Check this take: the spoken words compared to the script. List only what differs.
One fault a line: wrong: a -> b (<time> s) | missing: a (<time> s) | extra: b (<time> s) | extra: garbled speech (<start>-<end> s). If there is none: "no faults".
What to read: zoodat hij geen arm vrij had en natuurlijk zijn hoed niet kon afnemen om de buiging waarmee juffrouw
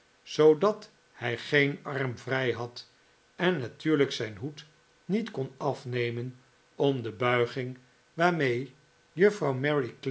no faults